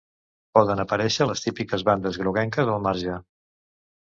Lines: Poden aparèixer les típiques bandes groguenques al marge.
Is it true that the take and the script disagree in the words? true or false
false